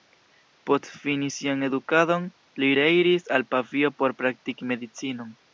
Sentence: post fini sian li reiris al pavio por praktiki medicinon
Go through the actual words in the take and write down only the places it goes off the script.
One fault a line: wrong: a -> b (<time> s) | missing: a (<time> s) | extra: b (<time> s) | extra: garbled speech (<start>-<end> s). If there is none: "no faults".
extra: edukadon (1.7 s)